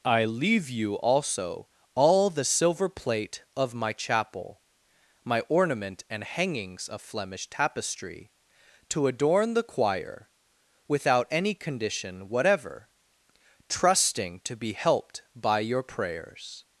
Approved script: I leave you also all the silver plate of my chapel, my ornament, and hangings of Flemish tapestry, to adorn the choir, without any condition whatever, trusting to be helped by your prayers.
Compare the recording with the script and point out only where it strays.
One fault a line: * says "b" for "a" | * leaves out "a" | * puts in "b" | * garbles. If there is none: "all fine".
all fine